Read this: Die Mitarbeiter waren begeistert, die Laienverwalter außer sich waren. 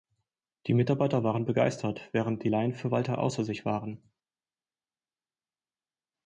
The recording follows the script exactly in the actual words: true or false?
false